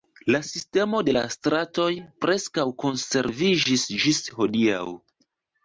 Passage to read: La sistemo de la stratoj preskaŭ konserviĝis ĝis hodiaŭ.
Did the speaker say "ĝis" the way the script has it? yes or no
yes